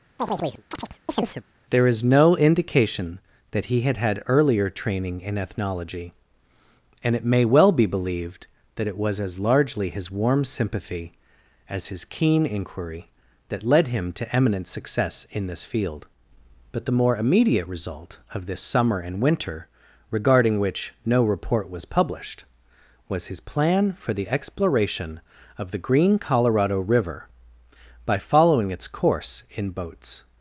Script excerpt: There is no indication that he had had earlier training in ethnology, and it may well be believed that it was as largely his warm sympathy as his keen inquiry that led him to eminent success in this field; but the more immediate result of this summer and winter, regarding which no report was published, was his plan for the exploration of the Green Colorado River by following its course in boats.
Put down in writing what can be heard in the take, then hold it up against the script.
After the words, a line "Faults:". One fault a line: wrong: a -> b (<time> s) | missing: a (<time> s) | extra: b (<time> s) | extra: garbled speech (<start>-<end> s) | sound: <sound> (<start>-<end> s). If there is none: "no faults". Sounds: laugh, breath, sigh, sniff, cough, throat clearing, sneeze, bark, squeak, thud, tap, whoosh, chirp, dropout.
There is no indication that he had had earlier training in ethnology, and it may well be believed that it was as largely his warm sympathy as his keen inquiry that led him to eminent success in this field; but the more immediate result of this summer and winter, regarding which no report was published, was his plan for the exploration of the Green Colorado River by following its course in boats.
Faults:
sound: chirp (0.2-1.4 s)